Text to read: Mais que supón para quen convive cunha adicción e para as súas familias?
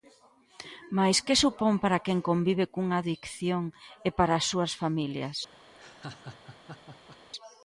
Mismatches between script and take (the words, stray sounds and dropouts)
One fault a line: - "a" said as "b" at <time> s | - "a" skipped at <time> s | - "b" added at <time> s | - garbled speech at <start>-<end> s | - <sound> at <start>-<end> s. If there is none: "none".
- laugh at 5.8-7.2 s